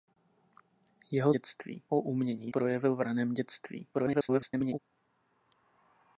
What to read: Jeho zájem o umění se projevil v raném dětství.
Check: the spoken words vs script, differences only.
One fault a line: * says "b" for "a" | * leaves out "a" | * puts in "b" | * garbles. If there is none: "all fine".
* says "dětství" for "zájem"
* leaves out "se"
* garbles